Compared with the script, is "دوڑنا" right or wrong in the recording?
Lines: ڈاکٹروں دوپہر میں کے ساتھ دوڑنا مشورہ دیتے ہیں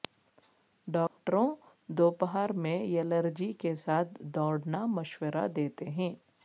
right